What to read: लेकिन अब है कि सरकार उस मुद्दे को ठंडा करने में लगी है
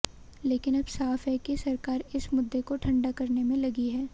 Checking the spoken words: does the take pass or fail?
fail